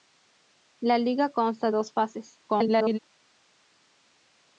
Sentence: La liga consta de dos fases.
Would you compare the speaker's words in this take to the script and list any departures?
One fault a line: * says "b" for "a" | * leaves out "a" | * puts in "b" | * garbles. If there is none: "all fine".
* leaves out "de"
* garbles